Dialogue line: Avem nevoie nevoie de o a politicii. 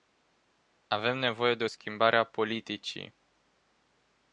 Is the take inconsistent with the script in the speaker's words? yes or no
yes